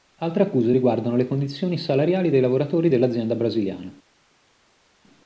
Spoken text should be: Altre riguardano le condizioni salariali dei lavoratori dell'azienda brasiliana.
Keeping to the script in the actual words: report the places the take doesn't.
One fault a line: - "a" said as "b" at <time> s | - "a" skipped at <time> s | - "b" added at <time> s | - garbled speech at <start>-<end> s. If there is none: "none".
- "accuse" added at 0.4 s